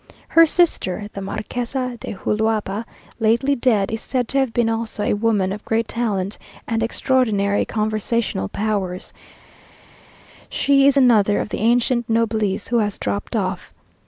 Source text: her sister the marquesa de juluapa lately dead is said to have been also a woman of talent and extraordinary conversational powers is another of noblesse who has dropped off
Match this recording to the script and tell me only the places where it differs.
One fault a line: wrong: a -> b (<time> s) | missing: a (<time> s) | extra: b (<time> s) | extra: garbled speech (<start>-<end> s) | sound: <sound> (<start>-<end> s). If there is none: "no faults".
extra: great (5.6 s)
extra: she (10.5 s)
extra: the ancient (11.5 s)